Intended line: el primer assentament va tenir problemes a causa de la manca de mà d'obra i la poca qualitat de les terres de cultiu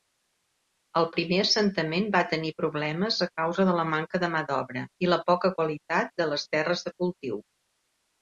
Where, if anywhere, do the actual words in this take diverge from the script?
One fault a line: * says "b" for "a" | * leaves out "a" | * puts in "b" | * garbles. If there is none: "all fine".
all fine